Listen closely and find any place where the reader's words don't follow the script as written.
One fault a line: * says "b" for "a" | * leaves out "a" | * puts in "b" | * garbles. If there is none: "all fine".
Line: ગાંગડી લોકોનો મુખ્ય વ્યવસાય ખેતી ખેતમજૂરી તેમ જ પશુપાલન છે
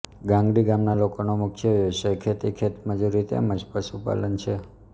* puts in "ગામના"